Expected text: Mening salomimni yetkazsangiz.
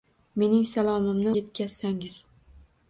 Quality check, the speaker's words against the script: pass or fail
pass